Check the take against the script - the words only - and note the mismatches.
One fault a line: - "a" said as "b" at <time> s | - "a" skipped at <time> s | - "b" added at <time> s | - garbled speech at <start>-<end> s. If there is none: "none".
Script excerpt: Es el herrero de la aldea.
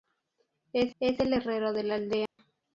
- "es" added at 1.0 s